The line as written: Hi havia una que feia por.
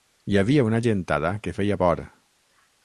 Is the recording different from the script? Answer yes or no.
yes